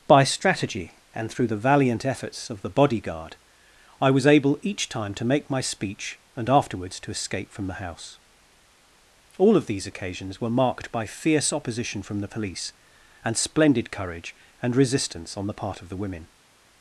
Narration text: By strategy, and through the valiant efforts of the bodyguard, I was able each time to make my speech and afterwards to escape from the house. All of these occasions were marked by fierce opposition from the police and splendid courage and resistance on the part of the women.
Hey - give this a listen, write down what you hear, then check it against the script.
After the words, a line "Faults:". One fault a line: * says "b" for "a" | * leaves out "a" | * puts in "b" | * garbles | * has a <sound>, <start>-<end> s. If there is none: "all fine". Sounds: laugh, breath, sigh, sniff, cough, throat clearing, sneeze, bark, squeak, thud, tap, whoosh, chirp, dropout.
By strategy, and through the valiant efforts of the bodyguard, I was able each time to make my speech and afterwards to escape from the house. All of these occasions were marked by fierce opposition from the police and splendid courage and resistance on the part of the women.
Faults:
all fine